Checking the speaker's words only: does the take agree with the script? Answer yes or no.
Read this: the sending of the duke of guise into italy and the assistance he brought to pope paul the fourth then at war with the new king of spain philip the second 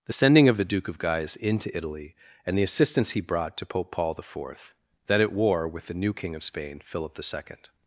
yes